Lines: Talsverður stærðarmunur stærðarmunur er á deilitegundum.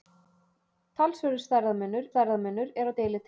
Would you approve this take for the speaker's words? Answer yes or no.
yes